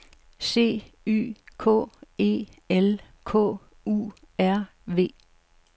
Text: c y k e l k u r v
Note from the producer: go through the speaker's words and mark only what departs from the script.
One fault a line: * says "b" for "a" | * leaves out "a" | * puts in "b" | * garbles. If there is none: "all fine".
all fine